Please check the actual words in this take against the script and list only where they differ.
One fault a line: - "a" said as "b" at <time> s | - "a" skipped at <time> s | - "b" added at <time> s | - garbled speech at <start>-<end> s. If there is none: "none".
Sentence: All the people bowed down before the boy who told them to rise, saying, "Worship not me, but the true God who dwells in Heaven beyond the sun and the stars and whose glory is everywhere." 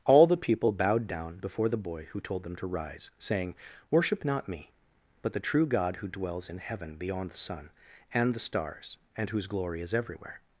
none